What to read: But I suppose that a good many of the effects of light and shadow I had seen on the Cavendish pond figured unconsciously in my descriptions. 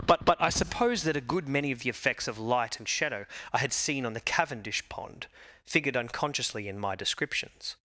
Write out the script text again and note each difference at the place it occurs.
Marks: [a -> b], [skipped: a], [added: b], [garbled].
But [added: but] I suppose that a good many of the effects of light and shadow I had seen on the Cavendish pond figured unconsciously in my descriptions.